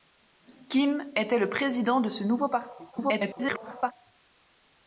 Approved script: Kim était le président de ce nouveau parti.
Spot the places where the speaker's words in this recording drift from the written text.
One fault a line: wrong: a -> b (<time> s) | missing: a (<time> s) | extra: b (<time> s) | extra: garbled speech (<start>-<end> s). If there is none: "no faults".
extra: garbled speech (2.9-3.9 s)